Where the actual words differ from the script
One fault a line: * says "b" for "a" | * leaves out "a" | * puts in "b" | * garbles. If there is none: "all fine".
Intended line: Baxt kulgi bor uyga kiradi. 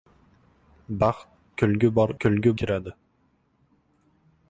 * says "kulgi" for "uyga"